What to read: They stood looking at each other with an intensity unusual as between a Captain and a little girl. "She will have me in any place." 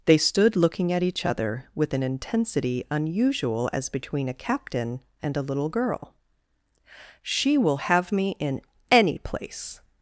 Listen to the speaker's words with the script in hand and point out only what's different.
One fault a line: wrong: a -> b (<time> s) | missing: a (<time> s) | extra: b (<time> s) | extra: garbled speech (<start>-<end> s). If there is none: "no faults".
no faults